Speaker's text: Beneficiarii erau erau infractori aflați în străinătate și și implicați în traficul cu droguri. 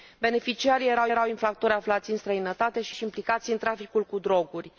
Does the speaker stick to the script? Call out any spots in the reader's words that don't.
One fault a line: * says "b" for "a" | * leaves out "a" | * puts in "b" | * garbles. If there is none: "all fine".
all fine